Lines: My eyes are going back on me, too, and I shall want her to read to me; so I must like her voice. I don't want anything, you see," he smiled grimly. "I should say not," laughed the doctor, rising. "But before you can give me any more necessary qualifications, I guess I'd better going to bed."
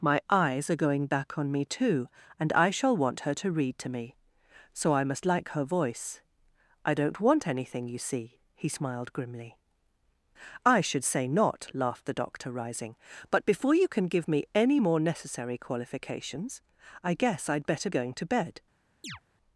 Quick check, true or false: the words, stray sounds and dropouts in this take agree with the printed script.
false